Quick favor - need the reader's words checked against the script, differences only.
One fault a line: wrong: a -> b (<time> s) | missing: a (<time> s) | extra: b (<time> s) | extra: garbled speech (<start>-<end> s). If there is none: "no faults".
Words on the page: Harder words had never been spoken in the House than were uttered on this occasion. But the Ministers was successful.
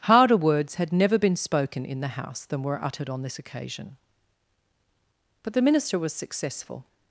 wrong: Ministers -> Minister (5.6 s)